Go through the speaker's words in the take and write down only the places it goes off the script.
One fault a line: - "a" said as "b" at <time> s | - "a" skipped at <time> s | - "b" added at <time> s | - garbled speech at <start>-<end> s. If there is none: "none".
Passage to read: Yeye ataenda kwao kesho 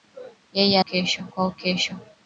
- "ataenda" said as "kesho" at 0.8 s